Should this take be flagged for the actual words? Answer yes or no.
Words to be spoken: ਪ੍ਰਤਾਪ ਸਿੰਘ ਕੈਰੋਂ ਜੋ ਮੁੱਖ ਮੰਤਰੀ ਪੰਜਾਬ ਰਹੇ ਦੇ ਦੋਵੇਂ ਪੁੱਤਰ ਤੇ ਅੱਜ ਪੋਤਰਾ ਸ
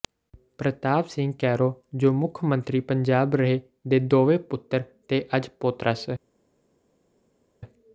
no